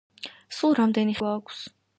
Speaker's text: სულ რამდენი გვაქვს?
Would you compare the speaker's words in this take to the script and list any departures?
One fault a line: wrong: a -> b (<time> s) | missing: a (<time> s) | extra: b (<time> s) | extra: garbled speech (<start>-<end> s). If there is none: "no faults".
no faults